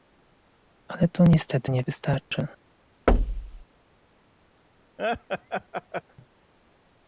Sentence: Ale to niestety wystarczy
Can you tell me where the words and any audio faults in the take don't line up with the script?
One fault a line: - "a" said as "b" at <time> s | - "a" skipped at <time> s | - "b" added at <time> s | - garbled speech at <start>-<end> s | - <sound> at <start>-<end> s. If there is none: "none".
- "nie" added at 1.7 s
- thud at 3.1-3.6 s
- laugh at 5.0-6.0 s